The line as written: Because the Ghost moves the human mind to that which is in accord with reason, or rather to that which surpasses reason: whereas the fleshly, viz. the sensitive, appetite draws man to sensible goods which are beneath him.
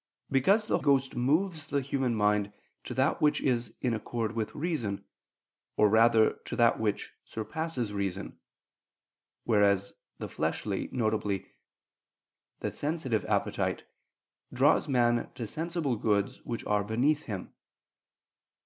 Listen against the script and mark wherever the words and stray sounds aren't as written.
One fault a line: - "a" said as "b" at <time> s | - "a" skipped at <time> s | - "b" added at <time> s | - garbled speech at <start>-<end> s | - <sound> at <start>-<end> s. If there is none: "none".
none